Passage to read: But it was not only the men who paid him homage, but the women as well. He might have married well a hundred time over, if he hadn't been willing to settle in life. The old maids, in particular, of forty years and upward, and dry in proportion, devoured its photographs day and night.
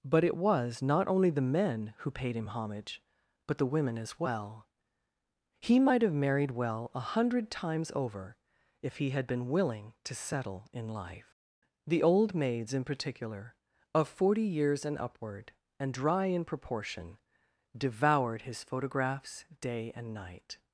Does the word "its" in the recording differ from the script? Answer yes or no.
yes